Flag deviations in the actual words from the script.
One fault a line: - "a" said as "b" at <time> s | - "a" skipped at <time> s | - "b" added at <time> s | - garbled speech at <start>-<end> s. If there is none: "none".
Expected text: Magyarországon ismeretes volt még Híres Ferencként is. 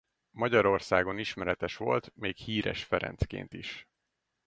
none